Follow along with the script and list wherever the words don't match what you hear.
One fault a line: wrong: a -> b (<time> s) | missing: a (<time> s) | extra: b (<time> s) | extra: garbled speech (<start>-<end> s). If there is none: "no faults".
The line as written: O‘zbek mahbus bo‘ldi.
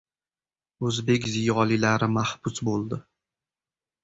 extra: ziyolilari (1.3 s)